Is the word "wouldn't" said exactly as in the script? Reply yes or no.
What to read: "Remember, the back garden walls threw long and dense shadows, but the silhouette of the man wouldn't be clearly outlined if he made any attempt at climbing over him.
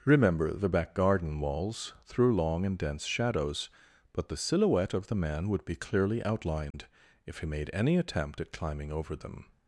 no